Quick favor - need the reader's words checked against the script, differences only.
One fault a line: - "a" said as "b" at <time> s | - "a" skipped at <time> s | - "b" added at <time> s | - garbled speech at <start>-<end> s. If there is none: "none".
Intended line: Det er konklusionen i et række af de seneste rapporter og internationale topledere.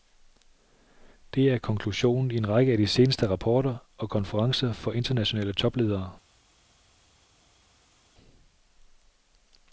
- "et" said as "en" at 2.4 s
- "konferencer for" added at 4.1 s